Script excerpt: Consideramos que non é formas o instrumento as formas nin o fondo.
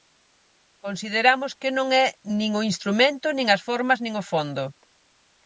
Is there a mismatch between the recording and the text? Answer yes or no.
yes